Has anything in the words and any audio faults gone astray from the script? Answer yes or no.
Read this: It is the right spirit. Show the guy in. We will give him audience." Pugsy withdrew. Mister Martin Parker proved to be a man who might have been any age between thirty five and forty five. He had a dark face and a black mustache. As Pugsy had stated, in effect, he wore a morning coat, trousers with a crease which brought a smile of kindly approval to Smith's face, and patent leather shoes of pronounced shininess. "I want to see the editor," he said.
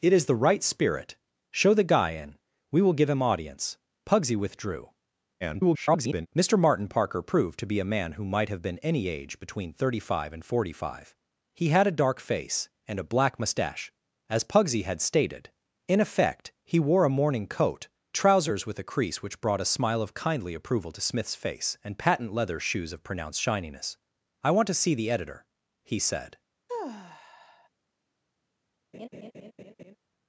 yes